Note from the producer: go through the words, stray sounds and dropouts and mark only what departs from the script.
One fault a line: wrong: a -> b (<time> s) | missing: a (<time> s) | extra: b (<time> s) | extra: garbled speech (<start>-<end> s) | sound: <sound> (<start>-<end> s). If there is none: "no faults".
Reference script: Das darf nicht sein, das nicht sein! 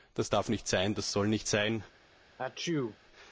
extra: soll (1.1 s)
sound: sneeze (2.4-3.0 s)